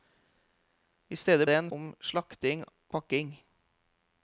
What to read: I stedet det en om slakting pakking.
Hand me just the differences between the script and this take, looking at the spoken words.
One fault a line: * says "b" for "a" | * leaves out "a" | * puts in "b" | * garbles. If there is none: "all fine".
all fine